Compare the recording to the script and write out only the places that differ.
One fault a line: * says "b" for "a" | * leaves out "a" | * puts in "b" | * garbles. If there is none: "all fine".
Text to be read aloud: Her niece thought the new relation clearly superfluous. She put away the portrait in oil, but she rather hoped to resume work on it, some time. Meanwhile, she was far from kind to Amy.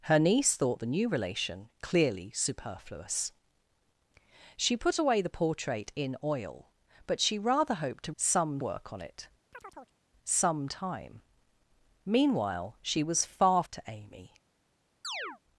* says "some" for "resume"
* leaves out "from kind"